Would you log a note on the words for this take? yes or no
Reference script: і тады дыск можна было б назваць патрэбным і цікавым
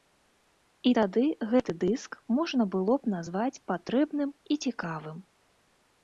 yes